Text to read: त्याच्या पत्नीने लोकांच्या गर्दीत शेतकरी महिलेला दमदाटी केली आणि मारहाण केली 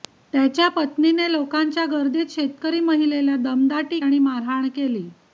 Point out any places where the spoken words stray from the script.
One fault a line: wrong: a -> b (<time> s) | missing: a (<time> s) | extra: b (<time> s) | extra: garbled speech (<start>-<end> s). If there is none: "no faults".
missing: केली (4.0 s)